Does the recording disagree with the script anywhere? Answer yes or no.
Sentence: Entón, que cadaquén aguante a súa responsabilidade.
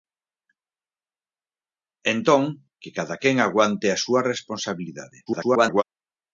yes